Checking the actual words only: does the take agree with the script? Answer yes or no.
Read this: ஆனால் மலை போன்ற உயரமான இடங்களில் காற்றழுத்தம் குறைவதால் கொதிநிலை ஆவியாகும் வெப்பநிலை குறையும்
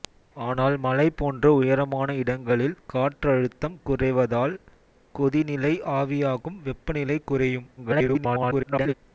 no